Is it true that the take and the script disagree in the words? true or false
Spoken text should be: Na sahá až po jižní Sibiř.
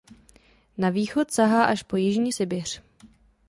true